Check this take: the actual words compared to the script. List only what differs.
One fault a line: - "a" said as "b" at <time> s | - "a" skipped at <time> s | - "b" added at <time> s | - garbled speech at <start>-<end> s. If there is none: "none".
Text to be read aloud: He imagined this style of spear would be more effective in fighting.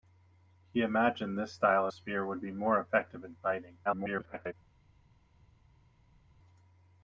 - "of" skipped at 1.9 s
- garbled speech at 3.8-4.5 s